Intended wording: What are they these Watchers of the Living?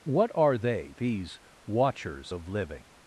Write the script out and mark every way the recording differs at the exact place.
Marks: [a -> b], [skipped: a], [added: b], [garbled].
What are they these Watchers of [skipped: the] Living?